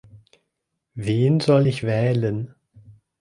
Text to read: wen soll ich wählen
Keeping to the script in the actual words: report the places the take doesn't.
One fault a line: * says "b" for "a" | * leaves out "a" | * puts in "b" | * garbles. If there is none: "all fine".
all fine